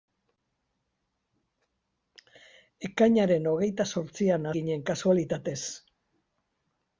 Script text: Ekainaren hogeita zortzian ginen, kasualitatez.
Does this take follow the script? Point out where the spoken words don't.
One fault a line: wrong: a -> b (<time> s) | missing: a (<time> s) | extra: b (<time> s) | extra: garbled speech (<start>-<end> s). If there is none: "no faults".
no faults